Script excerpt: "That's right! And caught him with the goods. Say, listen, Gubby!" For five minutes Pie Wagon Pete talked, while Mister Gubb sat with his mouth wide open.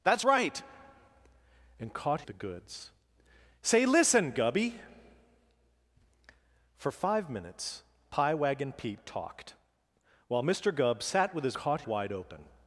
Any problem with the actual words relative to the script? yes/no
yes